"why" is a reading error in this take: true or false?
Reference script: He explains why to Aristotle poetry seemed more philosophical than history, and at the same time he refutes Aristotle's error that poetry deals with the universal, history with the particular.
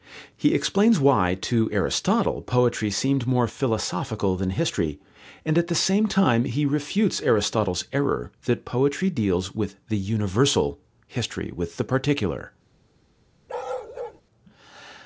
false